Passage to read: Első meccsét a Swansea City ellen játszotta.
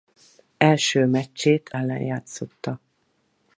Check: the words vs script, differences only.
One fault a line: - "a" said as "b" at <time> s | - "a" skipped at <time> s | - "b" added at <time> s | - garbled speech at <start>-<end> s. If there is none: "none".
- "a Swansea City" skipped at 1.7 s